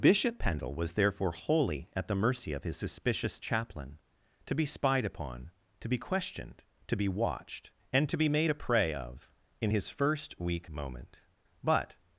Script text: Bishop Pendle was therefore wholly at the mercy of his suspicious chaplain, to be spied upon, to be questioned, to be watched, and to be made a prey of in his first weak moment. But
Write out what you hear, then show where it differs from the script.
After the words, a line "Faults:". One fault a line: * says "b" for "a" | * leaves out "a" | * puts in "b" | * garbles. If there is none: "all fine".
Bishop Pendle was therefore wholly at the mercy of his suspicious chaplain, to be spied upon, to be questioned, to be watched, and to be made a prey of in his first weak moment. But
Faults:
all fine